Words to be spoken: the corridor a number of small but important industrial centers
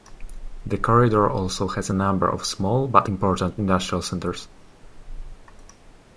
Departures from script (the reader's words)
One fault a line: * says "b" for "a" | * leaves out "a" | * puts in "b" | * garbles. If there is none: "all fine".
* puts in "also has"